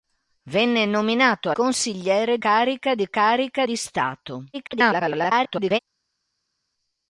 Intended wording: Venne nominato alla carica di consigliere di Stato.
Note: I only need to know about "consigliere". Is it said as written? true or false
false